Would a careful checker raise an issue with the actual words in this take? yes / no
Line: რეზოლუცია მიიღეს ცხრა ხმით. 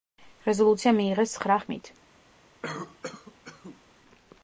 no